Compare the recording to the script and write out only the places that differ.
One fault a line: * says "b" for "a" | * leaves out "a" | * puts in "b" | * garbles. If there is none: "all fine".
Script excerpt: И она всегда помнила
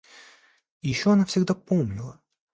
* puts in "еще"